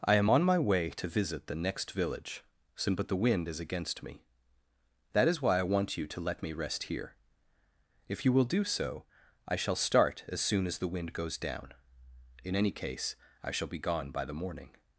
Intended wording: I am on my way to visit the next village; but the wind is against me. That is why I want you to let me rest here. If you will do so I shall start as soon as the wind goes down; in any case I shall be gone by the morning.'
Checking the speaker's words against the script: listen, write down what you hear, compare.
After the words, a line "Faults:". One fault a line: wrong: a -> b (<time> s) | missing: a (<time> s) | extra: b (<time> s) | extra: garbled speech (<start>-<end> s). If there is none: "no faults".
I am on my way to visit the next village; but the wind is against me. That is why I want you to let me rest here. If you will do so I shall start as soon as the wind goes down; in any case I shall be gone by the morning.'
Faults:
no faults